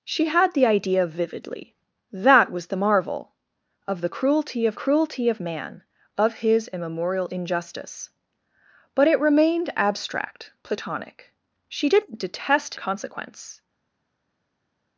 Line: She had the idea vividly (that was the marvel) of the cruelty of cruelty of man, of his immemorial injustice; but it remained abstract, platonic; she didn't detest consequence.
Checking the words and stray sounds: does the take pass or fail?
pass